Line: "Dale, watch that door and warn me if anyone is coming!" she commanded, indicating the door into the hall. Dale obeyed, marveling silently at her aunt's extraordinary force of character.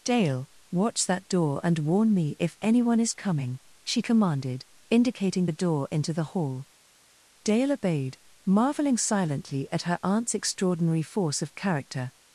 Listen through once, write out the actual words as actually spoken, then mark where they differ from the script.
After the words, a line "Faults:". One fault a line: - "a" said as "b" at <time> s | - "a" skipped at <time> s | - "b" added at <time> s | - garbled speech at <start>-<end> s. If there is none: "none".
"Dale, watch that door and warn me if anyone is coming!" she commanded, indicating the door into the hall. Dale obeyed, marveling silently at her aunt's extraordinary force of character.
Faults:
none